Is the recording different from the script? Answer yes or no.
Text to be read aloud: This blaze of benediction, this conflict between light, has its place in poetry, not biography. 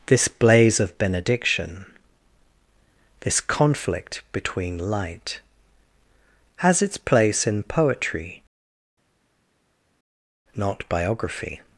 no